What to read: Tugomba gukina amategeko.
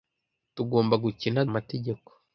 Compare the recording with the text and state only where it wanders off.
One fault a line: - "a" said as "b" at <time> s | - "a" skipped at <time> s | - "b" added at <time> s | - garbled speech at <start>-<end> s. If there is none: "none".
none